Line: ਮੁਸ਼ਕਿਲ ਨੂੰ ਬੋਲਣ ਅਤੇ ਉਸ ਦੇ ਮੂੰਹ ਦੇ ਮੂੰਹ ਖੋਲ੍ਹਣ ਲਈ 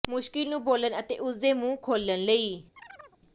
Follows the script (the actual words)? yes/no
no